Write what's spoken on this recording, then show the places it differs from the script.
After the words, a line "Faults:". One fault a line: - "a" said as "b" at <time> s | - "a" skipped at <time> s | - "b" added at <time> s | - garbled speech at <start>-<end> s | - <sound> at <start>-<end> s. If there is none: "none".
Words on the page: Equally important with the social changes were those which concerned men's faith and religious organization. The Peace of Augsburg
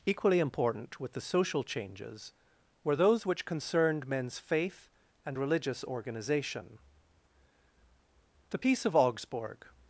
Equally important with the social changes were those which concerned men's faith and religious organization. The Peace of Augsburg
Faults:
none